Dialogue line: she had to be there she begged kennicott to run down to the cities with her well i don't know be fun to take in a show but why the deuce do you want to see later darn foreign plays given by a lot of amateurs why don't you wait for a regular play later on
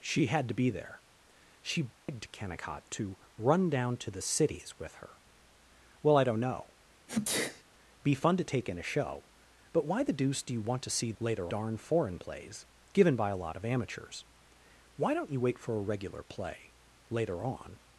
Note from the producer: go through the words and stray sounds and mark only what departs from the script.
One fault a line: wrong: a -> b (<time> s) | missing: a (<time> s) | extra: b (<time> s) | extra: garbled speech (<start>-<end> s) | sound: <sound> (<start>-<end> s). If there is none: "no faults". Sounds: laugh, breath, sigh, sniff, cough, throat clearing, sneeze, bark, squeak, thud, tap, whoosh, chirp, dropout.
sound: dropout (2.0-2.1 s)
sound: sneeze (7.1-7.6 s)